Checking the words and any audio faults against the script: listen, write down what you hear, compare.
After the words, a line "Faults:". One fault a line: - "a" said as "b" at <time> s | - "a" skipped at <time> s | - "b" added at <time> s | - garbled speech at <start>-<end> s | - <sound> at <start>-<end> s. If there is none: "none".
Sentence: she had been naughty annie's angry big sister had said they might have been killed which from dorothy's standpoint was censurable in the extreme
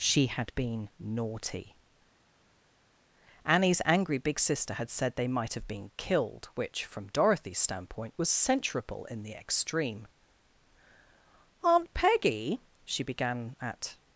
she had been naughty annie's angry big sister had said they might have been killed which from dorothy's standpoint was censurable in the extreme aunt peggy she began at
Faults:
- "aunt peggy she began at" added at 11.6 s